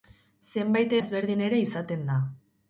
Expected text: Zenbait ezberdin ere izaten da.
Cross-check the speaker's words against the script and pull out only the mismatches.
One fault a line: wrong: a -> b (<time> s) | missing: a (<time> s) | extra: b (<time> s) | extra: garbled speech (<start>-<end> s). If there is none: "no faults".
no faults